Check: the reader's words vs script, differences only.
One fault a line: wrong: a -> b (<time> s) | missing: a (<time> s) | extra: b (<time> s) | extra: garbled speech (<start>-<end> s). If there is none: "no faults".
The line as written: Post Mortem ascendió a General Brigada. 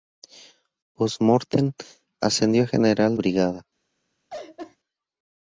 no faults